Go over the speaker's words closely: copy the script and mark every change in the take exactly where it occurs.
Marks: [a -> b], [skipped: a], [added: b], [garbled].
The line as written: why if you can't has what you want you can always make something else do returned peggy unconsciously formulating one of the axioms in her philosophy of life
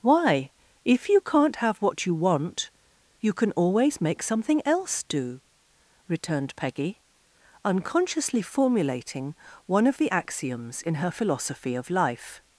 why if you can't [has -> have] what you want you can always make something else do returned peggy unconsciously formulating one of the axioms in her philosophy of life